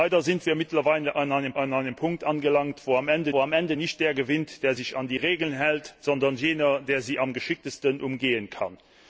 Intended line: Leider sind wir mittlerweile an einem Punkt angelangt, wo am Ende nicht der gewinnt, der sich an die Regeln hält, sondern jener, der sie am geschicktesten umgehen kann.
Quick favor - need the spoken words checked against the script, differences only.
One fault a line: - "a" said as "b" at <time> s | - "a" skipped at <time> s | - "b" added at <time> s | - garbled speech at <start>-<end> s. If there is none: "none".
- "an einem" added at 1.6 s
- "wo am Ende" added at 3.3 s